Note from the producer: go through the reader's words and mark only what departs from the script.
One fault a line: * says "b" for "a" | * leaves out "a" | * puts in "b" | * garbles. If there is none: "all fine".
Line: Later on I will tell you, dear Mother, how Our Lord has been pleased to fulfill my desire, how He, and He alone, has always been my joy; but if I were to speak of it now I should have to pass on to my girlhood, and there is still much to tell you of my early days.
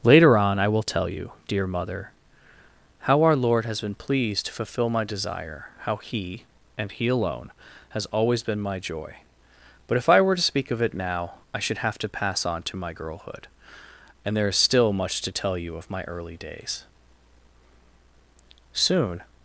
* puts in "Soon"